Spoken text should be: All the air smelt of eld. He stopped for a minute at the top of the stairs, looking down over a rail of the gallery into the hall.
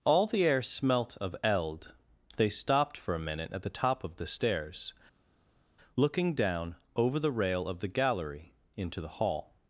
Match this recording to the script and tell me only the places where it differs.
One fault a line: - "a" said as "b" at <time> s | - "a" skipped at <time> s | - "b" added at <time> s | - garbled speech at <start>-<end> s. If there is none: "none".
- "He" said as "They" at 2.4 s
- "a" said as "the" at 7.2 s